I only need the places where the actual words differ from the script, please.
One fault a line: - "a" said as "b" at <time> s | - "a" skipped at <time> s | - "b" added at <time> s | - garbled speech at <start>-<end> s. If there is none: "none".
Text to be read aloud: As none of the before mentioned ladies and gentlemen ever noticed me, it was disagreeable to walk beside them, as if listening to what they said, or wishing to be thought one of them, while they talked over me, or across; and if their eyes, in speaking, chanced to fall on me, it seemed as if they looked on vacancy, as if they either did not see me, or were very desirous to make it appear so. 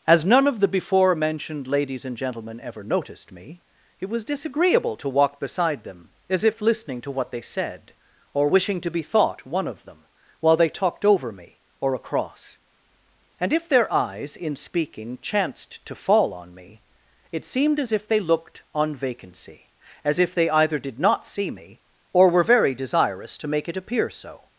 none